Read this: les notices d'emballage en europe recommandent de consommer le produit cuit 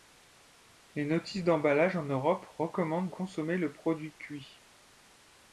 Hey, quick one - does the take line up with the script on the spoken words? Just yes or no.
no